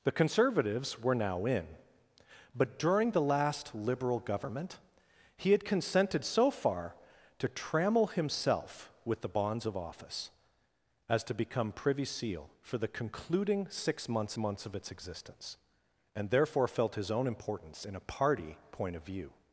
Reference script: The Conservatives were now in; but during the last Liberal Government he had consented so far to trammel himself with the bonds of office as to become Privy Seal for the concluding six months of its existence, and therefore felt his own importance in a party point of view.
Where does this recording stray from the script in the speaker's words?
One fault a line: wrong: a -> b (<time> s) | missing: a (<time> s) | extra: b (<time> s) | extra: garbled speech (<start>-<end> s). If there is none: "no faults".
extra: months (14.4 s)